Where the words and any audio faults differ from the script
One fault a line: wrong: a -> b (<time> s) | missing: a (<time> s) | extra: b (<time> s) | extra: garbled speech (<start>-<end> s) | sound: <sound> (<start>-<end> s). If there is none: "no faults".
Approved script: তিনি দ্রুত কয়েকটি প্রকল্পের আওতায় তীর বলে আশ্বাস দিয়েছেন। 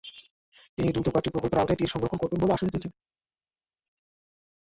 extra: সংরক্ষণ করবেন (1.9 s)